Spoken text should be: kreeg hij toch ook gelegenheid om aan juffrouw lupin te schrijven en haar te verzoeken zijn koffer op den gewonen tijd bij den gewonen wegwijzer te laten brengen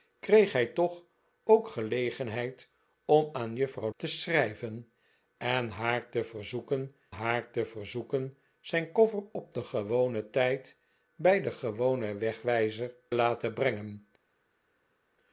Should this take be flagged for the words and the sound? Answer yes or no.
yes